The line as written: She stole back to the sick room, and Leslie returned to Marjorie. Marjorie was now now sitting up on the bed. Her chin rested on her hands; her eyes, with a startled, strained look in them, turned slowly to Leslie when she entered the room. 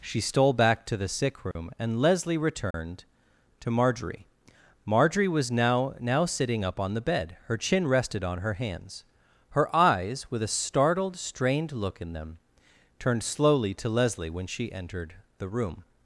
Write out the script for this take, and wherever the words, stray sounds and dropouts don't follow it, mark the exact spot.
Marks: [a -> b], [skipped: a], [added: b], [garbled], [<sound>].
She stole back to the sick room, [dropout] and Leslie returned [dropout] to Marjorie. Marjorie was now now sitting up on the bed. Her chin rested on her hands; her eyes, with a startled, strained look in them, turned slowly to Leslie when she entered the room.